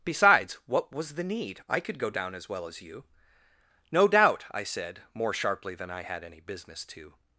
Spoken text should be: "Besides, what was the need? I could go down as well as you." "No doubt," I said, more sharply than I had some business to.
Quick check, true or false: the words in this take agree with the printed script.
false